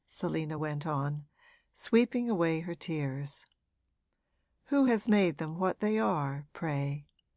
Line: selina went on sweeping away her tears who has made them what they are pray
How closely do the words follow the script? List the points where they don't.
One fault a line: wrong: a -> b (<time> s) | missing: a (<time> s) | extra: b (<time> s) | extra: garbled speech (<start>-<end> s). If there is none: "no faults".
no faults